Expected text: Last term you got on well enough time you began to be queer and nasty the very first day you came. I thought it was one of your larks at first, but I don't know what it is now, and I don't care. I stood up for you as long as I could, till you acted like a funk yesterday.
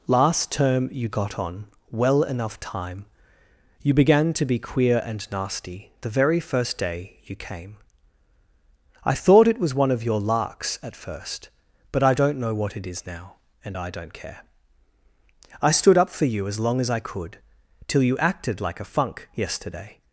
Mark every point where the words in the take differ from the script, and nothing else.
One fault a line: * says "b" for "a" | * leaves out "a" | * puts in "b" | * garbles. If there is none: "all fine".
all fine